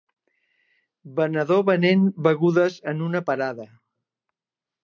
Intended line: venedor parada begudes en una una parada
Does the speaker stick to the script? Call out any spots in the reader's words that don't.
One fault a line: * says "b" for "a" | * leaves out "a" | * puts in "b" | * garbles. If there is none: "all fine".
* says "venent" for "parada"
* leaves out "una"